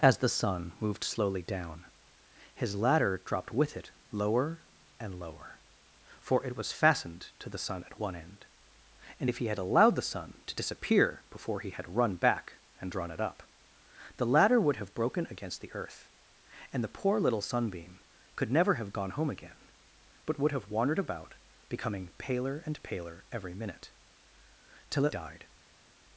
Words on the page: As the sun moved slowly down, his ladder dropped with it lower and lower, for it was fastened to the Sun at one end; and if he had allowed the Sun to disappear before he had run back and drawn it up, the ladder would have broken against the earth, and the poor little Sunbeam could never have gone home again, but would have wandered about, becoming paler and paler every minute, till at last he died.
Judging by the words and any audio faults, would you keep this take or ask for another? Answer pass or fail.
fail